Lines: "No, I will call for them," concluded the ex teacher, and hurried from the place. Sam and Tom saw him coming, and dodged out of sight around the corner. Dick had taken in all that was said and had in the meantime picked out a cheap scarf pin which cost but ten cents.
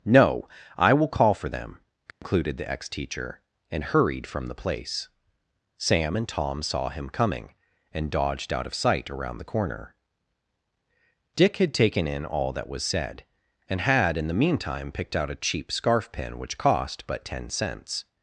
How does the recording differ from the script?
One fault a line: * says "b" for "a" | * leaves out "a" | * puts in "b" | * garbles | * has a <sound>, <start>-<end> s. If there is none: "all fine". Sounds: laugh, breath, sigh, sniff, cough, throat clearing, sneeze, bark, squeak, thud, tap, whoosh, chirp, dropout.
* has a dropout, 2.1-2.2 s